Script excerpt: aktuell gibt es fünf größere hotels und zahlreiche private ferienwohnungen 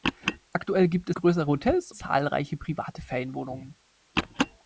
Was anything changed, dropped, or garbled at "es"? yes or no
yes